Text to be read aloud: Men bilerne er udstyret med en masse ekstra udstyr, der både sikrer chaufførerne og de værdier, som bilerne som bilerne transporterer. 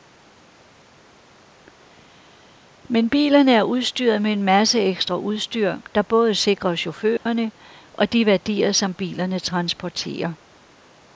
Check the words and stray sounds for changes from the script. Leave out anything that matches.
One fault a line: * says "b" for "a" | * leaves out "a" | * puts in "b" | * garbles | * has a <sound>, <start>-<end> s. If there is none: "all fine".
* has a dropout, 7.2-7.3 s
* leaves out "som bilerne"